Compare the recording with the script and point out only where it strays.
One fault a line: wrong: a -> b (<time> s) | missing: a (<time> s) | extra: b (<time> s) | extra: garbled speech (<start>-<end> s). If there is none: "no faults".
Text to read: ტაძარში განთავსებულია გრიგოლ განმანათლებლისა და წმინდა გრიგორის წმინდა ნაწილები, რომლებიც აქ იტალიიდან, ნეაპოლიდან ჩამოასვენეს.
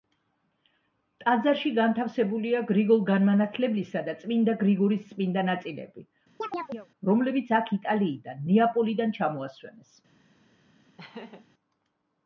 no faults